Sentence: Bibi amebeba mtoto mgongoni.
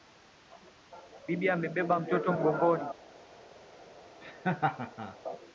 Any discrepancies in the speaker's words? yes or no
no